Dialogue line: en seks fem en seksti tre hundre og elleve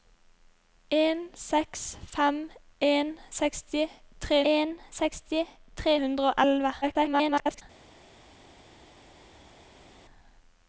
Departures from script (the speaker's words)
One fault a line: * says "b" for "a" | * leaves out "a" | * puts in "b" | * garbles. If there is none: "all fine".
* puts in "en seksti tre"
* garbles